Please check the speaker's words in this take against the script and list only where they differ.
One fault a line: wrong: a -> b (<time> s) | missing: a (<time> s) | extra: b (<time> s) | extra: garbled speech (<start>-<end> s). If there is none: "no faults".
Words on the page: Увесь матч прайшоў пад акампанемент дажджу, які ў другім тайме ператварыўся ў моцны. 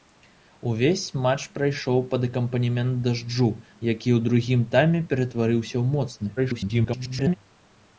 extra: garbled speech (6.4-7.4 s)